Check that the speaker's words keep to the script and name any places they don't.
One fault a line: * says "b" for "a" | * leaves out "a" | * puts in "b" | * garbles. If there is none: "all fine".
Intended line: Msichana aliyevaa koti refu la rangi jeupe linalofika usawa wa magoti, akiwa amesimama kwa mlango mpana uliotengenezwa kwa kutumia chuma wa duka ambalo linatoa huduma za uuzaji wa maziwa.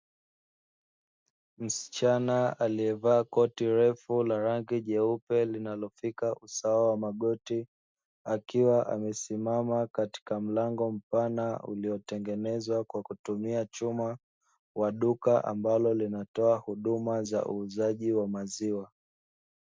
* says "katika" for "kwa"